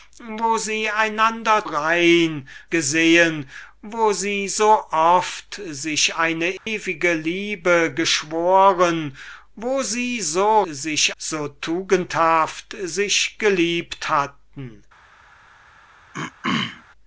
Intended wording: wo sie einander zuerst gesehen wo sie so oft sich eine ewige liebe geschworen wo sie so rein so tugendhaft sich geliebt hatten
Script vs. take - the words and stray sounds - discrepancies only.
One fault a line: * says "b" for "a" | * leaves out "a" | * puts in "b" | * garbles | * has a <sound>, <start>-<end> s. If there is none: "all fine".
* says "rein" for "zuerst"
* has a dropout, 6.6-6.7 s
* says "sich" for "rein"
* has a throat clearing, 16.1-16.8 s